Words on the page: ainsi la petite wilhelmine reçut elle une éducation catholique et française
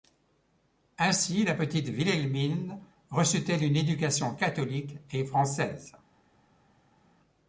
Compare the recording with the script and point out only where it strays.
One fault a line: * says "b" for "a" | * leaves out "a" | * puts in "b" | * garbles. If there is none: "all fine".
all fine